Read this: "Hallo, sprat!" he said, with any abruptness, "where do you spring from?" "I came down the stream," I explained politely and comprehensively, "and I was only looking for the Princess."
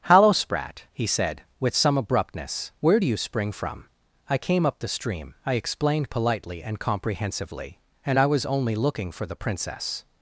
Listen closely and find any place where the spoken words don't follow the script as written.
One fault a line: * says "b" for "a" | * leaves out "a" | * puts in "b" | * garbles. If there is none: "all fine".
* says "some" for "any"
* says "up" for "down"